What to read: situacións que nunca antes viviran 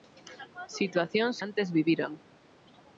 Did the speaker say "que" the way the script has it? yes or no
no